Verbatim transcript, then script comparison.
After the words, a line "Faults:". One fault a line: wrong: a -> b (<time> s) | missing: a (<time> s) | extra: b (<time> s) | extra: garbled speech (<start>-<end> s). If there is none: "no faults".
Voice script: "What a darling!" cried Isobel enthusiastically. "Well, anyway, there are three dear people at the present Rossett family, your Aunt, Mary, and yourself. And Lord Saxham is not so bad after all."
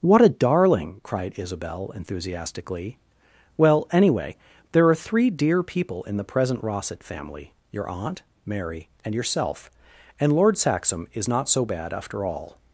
"What a darling!" cried Isobel enthusiastically. "Well, anyway, there are three dear people in the present Rossett family, your Aunt, Mary, and yourself. And Lord Saxham is not so bad after all."
Faults:
wrong: at -> in (6.0 s)